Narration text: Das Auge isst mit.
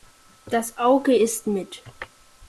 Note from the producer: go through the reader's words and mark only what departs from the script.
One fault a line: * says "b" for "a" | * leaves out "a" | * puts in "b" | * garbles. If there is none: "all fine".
all fine